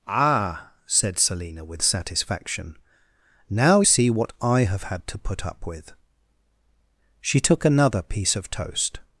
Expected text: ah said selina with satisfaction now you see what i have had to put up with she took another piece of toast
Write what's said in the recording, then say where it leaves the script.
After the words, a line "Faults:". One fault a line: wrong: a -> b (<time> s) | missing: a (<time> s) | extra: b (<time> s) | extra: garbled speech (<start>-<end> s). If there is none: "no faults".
ah said selina with satisfaction now see what i have had to put up with she took another piece of toast
Faults:
missing: you (3.8 s)